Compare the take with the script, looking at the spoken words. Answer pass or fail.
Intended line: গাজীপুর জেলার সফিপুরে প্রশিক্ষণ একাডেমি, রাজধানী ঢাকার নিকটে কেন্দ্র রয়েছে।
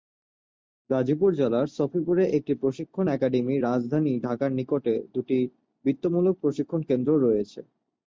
fail